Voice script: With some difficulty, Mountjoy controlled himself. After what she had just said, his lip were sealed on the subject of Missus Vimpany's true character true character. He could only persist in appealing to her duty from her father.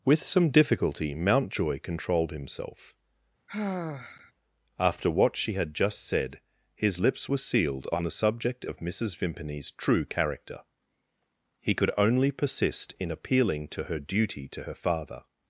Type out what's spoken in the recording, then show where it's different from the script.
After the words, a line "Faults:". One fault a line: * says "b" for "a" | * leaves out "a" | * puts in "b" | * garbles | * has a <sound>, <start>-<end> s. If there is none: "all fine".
With some difficulty, Mountjoy controlled himself. After what she had just said, his lips were sealed on the subject of Missus Vimpany's true character. He could only persist in appealing to her duty to her father.
Faults:
* has a sigh, 3.5-4.3 s
* says "lips" for "lip"
* leaves out "true character"
* says "to" for "from"